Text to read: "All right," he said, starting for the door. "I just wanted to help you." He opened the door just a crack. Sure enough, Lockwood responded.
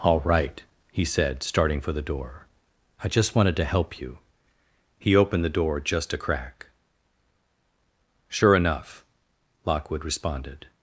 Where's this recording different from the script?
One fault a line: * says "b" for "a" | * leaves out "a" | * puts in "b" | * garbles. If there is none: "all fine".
all fine